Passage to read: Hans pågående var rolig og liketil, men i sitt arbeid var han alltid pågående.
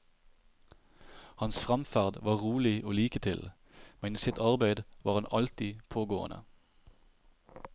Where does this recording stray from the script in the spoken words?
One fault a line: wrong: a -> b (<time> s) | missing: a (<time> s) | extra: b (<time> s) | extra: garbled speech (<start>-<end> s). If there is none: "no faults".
wrong: pågående -> fremferd (1.6 s)